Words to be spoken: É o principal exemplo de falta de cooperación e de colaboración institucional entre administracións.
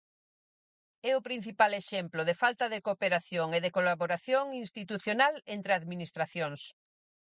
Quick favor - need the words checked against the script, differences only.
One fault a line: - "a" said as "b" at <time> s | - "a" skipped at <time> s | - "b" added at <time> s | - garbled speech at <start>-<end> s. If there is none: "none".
none